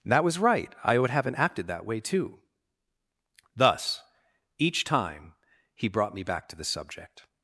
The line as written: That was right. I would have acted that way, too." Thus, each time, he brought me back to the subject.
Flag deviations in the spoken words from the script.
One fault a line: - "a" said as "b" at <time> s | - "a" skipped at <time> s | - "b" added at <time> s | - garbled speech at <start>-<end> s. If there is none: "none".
- "have" said as "haven't" at 1.1 s